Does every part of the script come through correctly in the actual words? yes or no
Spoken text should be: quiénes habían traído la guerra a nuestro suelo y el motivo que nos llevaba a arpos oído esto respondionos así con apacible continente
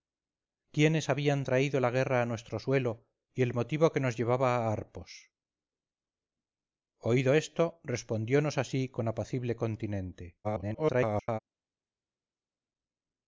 no